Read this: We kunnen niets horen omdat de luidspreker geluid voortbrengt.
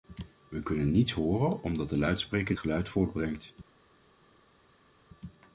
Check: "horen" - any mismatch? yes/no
no